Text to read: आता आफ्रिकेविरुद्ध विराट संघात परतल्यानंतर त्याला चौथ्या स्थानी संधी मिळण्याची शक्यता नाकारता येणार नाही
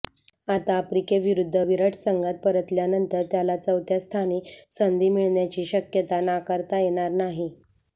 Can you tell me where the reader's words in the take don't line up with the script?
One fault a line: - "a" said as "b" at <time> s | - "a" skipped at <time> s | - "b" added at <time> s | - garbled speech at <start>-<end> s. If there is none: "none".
none